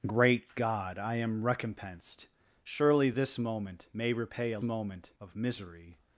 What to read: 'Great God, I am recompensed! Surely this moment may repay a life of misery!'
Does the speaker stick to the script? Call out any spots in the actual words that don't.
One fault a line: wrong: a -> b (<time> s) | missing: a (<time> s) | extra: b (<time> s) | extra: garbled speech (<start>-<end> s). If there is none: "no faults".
wrong: life -> moment (4.6 s)